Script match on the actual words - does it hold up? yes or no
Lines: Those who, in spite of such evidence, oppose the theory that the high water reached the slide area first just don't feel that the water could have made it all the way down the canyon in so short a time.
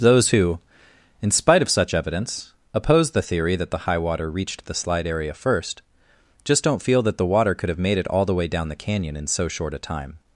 yes